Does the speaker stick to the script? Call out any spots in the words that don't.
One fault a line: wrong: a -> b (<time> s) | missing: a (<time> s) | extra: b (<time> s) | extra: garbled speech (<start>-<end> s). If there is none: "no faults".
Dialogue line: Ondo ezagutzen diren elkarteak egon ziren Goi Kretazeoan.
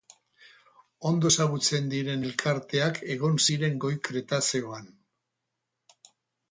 no faults